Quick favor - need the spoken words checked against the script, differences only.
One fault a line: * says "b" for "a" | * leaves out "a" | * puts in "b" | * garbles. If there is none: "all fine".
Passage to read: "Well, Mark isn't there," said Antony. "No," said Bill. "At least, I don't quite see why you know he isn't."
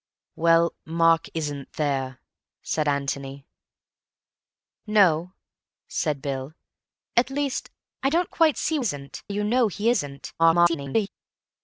* says "isn't" for "why"
* garbles